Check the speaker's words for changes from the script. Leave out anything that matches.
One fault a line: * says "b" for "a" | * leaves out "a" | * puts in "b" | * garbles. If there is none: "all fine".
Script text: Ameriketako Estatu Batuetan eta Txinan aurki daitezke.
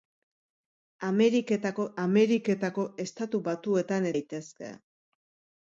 * puts in "ameriketako"
* leaves out "eta Txinan aurki"